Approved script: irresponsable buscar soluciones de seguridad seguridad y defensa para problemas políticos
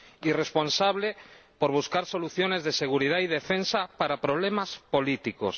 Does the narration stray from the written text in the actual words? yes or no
yes